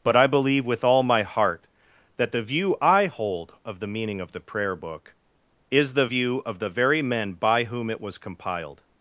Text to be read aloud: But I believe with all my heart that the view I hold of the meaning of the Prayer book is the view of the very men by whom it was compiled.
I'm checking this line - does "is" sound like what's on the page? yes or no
yes